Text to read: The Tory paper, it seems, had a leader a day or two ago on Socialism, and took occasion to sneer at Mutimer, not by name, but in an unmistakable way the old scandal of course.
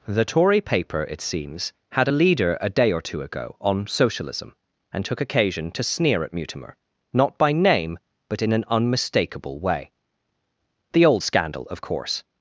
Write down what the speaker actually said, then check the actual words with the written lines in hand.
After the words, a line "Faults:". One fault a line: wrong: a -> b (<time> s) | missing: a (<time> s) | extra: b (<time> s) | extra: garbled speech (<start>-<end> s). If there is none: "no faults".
The Tory paper, it seems, had a leader a day or two ago on Socialism, and took occasion to sneer at Mutimer, not by name, but in an unmistakable way the old scandal of course.
Faults:
no faults